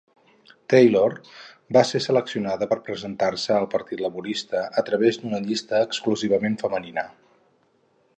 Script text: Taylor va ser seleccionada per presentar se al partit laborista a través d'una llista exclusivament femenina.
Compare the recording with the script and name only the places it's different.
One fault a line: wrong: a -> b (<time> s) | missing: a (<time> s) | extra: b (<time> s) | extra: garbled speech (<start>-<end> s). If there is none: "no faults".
no faults